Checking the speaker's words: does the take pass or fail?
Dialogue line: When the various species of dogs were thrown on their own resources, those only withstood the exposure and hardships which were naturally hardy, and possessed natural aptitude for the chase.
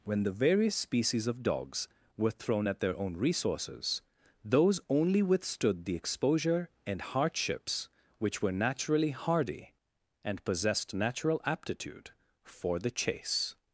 fail